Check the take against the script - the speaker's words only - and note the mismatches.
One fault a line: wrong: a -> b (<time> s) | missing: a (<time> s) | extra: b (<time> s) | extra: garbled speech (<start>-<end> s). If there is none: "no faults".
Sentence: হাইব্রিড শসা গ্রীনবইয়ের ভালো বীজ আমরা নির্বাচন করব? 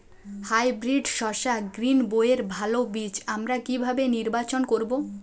extra: কিভাবে (3.6 s)